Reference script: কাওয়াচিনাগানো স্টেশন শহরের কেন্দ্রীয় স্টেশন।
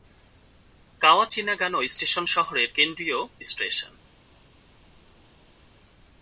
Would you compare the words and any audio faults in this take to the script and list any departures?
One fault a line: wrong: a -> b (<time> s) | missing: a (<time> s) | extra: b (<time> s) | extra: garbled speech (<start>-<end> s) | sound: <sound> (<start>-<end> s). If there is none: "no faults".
no faults